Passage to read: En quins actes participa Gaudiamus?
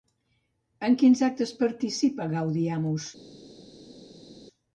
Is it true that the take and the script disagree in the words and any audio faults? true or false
false